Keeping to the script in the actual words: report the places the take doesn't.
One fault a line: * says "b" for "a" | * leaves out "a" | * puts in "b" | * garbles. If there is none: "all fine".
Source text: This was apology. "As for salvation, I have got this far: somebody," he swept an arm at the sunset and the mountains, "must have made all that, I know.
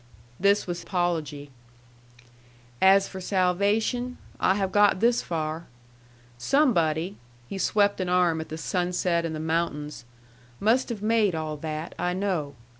all fine